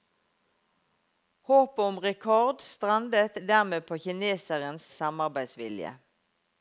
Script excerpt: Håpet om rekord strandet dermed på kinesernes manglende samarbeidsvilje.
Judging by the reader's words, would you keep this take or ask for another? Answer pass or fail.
fail